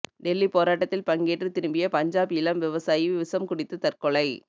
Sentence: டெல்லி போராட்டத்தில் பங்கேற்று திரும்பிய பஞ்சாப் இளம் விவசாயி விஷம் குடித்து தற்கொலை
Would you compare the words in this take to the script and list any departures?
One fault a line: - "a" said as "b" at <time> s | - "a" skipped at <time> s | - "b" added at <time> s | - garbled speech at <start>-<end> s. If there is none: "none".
none